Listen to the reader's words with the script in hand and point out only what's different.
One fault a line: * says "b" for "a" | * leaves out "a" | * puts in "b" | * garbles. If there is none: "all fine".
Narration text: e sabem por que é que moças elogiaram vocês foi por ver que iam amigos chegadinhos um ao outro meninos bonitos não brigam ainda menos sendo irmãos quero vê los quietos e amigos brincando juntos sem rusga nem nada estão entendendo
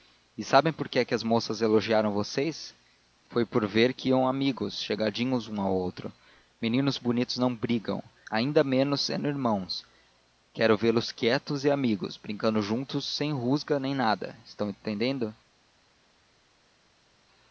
* puts in "as"